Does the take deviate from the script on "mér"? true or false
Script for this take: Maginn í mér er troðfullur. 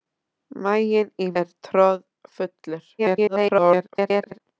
true